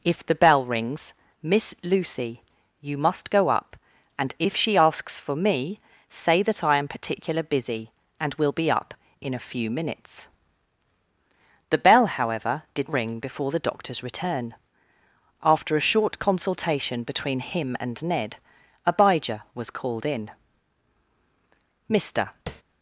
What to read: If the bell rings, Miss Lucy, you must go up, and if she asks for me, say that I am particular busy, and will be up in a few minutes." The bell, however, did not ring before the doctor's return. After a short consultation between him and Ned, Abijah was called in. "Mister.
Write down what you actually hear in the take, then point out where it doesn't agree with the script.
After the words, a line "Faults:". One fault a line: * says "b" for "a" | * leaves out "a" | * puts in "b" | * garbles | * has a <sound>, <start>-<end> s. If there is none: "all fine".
If the bell rings, Miss Lucy, you must go up, and if she asks for me, say that I am particular busy, and will be up in a few minutes." The bell, however, did ring before the doctor's return. After a short consultation between him and Ned, Abijah was called in. "Mister.
Faults:
* leaves out "not"
* has a tap, 22.5-22.6 s